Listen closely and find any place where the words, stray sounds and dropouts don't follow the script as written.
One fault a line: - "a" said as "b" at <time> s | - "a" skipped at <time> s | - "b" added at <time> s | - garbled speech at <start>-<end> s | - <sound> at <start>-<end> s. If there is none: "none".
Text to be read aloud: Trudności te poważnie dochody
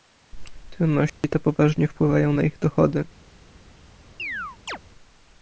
- dropout at 1.1-1.2 s
- "wpływają na ich" added at 1.9 s
- chirp at 4.2-4.8 s